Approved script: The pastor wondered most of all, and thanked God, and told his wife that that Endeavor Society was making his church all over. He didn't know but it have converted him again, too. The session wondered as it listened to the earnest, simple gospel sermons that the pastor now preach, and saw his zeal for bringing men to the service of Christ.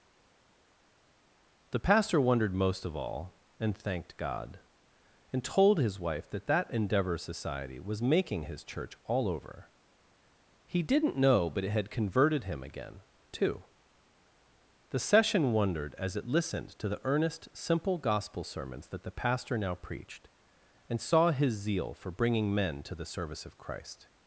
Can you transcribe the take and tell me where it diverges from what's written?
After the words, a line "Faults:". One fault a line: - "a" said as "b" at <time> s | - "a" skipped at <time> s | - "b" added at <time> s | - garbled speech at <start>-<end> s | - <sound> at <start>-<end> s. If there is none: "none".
The pastor wondered most of all, and thanked God, and told his wife that that Endeavor Society was making his church all over. He didn't know but it had converted him again, too. The session wondered as it listened to the earnest, simple gospel sermons that the pastor now preached, and saw his zeal for bringing men to the service of Christ.
Faults:
- "have" said as "had" at 11.7 s
- "preach" said as "preached" at 19.8 s